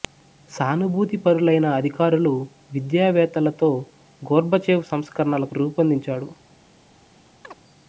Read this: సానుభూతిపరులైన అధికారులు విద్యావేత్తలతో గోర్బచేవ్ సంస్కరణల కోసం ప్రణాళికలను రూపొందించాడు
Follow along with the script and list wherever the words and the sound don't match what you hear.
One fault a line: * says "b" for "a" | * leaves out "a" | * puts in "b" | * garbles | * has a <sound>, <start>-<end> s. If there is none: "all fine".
* leaves out "కోసం ప్రణాళికలను"
* has a chirp, 7.4-7.6 s